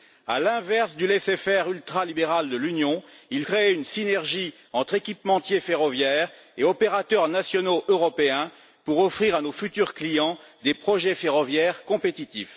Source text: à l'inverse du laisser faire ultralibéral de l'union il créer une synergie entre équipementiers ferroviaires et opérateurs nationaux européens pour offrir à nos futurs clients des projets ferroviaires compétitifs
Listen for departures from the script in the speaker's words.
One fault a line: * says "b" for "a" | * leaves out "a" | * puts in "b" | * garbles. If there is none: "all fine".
all fine